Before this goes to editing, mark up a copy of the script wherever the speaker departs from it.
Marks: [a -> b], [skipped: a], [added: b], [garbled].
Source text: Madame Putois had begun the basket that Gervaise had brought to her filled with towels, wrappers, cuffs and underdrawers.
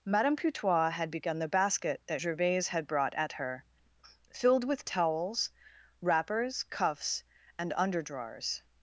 Madame Putois had begun the basket that Gervaise had brought [to -> at] her filled with towels, wrappers, cuffs and underdrawers.